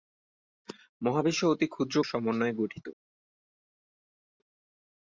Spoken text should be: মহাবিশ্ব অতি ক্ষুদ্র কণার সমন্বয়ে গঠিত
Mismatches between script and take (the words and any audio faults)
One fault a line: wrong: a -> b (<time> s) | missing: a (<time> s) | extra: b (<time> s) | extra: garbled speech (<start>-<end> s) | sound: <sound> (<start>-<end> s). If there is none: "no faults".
missing: কণার (2.0 s)